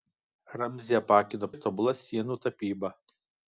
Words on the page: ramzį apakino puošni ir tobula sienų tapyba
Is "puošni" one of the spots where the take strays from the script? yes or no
yes